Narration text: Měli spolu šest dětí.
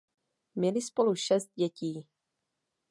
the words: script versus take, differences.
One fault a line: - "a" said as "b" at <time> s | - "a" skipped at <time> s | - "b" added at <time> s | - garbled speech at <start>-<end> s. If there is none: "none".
none